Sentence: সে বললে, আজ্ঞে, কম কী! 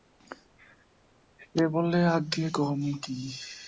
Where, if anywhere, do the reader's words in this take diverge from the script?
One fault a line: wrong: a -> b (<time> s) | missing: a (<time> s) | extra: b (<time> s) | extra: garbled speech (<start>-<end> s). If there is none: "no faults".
no faults